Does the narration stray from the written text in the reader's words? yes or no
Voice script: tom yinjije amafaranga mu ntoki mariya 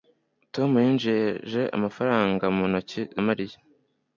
no